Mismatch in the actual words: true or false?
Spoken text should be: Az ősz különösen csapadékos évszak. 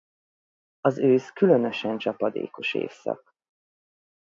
false